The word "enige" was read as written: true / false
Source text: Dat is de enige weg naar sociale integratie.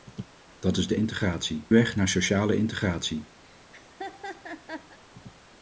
false